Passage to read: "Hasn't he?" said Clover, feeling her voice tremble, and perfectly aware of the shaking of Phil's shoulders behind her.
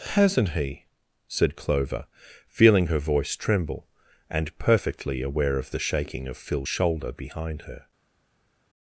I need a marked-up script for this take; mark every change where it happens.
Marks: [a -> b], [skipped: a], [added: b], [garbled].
"Hasn't he?" said Clover, feeling her voice tremble, and perfectly aware of the shaking of Phil's [shoulders -> shoulder] behind her.